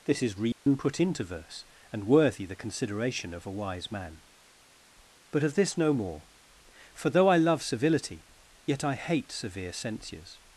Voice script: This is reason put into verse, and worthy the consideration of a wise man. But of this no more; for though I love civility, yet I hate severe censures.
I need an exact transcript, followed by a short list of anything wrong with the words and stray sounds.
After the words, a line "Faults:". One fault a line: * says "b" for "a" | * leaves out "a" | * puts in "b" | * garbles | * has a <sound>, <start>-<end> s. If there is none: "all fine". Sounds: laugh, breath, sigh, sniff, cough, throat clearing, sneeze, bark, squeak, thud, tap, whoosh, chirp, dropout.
This is reason put into verse, and worthy the consideration of a wise man. But of this no more; for though I love civility, yet I hate severe censures.
Faults:
* has a dropout, 0.5-0.7 s